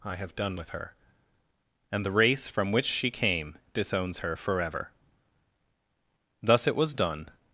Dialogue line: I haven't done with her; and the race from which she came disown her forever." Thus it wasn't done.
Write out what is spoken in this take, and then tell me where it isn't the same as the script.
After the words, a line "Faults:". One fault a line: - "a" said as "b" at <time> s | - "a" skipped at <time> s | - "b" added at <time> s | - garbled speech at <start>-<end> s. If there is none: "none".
I have done with her; and the race from which she came disowns her forever." Thus it was done.
Faults:
- "haven't" said as "have" at 0.1 s
- "disown" said as "disowns" at 3.7 s
- "wasn't" said as "was" at 6.8 s